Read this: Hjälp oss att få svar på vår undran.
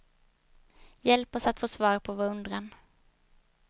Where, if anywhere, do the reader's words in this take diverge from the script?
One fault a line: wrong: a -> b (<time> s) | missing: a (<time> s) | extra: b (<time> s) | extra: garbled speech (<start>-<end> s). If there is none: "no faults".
no faults